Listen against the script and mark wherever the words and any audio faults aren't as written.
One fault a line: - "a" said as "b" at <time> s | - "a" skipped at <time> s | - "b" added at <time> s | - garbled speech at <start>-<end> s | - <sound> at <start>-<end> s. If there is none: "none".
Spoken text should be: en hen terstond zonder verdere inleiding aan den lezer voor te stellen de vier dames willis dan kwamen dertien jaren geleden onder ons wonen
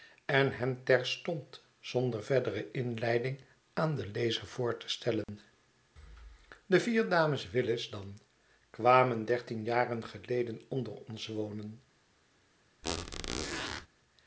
- dropout at 5.2-5.3 s
- squeak at 12.8-13.9 s